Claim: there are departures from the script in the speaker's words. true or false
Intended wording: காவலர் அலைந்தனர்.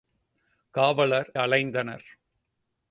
false